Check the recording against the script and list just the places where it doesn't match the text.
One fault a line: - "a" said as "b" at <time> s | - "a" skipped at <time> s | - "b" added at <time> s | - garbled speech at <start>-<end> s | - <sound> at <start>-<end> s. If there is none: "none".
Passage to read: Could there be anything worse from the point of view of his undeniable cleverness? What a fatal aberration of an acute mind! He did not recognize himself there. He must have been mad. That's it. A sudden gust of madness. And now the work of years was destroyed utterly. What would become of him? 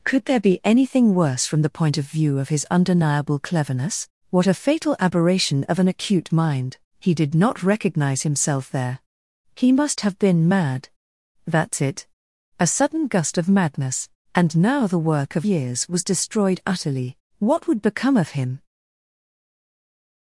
none